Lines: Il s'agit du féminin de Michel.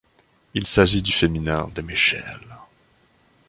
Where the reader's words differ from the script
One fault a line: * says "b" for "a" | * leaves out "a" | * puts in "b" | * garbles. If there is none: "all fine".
all fine